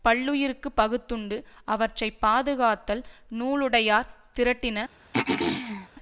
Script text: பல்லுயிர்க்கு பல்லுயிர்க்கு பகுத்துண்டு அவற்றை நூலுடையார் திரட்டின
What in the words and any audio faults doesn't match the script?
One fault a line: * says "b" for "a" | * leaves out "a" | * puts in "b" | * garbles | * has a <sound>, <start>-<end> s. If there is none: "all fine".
* leaves out "பல்லுயிர்க்கு"
* puts in "பாதுகாத்தல்"
* has a throat clearing, 5.1-5.9 s